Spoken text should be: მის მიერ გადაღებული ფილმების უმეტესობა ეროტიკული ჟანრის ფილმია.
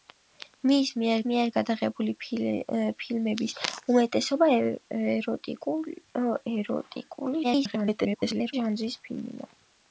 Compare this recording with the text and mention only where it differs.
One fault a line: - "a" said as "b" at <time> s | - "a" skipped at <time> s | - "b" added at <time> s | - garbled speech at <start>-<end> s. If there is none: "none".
- "მიერ" added at 1.3 s
- garbled speech at 7.4-8.5 s